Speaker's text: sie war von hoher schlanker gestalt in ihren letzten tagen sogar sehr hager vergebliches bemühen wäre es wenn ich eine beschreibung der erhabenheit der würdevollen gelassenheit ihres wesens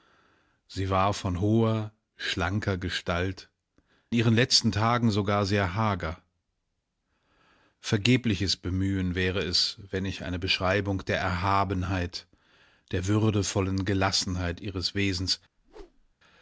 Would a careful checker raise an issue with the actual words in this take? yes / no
yes